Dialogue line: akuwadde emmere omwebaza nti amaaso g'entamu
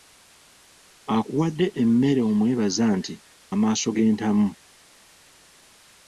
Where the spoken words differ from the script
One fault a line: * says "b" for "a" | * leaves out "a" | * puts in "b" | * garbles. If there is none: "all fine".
all fine